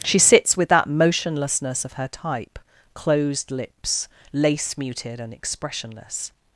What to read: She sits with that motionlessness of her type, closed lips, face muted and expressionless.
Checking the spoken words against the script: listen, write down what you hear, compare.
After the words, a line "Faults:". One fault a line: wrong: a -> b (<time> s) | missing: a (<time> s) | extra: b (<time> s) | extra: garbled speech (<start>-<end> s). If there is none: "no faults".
She sits with that motionlessness of her type, closed lips, lace muted and expressionless.
Faults:
wrong: face -> lace (4.3 s)